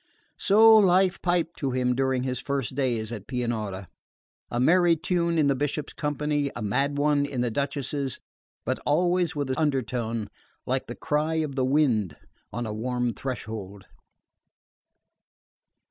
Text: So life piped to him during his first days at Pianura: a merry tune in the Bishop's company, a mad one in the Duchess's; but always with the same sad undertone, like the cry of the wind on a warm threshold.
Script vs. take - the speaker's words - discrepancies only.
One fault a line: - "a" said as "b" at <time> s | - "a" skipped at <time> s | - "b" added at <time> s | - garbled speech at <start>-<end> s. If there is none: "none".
- "same sad" skipped at 9.6 s